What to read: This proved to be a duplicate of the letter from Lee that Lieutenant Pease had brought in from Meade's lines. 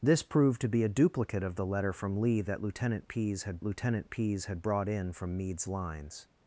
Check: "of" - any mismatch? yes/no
no